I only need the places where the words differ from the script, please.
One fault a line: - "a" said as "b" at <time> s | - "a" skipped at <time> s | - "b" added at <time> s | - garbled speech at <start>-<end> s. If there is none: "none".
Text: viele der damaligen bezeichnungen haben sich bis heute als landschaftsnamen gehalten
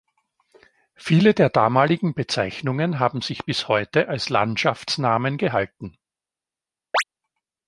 none